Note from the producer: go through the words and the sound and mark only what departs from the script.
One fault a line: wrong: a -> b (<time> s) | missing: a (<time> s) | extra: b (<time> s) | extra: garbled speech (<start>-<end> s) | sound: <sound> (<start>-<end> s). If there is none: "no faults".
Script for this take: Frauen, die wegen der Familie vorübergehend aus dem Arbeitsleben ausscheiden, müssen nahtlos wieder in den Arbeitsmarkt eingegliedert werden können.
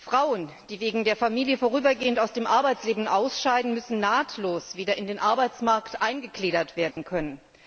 sound: dropout (6.9-7.0 s)